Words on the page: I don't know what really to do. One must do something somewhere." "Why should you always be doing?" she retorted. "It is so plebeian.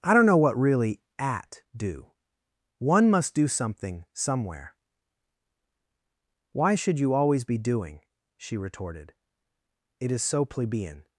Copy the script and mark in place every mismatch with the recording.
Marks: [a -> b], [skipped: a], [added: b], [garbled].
I don't know what really [to -> at] do. One must do something somewhere." "Why should you always be doing?" she retorted. "It is so plebeian.